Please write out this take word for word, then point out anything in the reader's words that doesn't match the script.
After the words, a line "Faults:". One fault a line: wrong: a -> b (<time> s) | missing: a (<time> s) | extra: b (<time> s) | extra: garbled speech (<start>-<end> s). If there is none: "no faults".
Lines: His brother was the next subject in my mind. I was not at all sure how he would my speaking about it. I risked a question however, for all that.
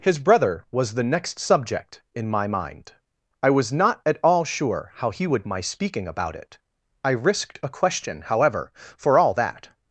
His brother was the next subject in my mind. I was not at all sure how he would my speaking about it. I risked a question however, for all that.
Faults:
no faults